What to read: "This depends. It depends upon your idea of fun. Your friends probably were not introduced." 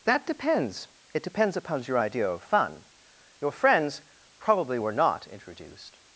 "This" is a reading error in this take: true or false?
true